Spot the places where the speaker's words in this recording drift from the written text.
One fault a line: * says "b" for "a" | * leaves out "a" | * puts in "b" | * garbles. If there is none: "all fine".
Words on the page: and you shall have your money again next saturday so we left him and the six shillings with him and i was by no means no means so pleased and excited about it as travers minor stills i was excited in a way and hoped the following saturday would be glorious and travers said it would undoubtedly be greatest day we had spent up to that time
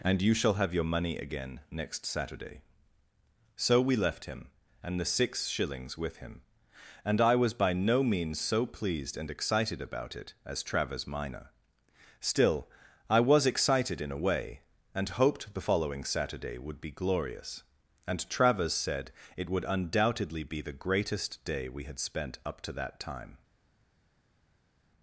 * leaves out "no means"
* says "still" for "stills"
* puts in "the"